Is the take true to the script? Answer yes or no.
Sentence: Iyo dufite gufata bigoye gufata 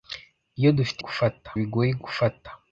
yes